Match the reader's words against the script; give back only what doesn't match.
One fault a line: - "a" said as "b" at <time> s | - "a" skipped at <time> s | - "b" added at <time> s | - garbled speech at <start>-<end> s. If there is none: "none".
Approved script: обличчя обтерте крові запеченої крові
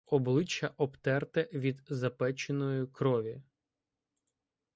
- "крові" said as "від" at 1.5 s